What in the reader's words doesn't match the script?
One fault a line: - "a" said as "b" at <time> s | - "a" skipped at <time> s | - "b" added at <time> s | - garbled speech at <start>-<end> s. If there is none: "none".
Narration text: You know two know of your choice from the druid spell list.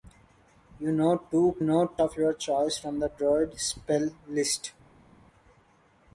none